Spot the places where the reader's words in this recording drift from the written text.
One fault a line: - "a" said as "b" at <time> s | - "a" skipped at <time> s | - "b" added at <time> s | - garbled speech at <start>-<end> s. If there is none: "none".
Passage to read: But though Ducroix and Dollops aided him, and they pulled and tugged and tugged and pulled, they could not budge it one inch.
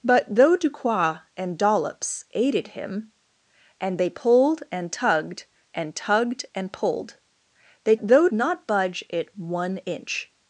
- "could" said as "though" at 8.0 s